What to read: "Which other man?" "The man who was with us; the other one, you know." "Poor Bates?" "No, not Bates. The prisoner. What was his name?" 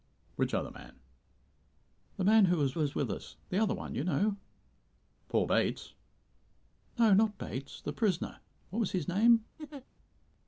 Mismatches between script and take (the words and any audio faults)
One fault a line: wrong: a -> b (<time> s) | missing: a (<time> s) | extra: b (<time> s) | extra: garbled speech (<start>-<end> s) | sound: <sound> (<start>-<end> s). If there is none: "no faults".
extra: was (2.8 s)
sound: laugh (9.6-9.8 s)